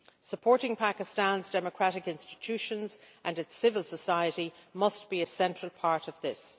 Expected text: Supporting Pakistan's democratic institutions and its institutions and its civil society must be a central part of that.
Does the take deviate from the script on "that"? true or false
true